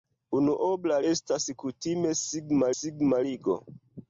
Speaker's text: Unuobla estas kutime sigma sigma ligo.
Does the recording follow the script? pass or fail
pass